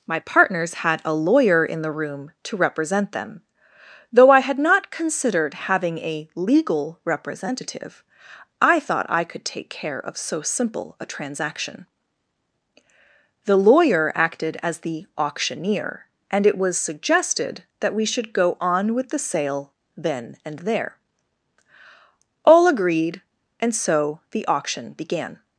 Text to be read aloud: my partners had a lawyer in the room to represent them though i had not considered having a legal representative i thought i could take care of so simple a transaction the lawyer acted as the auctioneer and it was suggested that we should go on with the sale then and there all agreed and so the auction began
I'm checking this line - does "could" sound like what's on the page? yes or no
yes